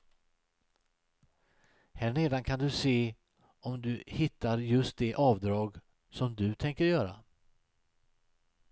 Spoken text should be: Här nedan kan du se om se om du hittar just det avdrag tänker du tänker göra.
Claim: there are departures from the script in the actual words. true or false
true